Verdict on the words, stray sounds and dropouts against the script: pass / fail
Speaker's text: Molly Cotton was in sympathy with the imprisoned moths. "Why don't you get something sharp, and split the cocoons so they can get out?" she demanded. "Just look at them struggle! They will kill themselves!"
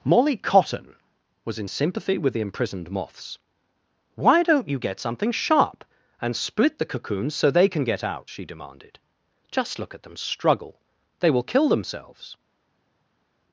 pass